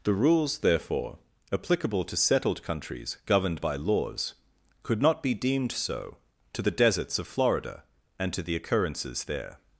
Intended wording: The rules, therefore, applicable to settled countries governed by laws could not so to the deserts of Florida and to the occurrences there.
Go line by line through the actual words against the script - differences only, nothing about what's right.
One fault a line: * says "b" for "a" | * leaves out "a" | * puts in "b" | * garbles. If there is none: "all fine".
* puts in "be deemed"